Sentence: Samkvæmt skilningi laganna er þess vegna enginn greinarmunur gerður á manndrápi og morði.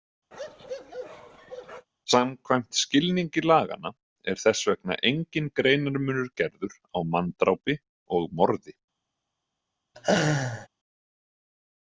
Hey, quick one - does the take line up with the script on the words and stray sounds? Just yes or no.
no